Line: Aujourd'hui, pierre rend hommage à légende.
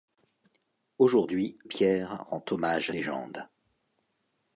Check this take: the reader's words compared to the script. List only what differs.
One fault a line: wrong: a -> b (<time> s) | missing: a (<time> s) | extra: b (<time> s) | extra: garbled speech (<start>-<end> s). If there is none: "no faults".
no faults